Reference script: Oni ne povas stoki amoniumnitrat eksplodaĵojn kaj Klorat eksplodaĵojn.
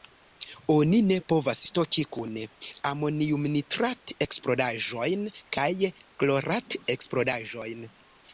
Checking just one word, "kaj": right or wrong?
right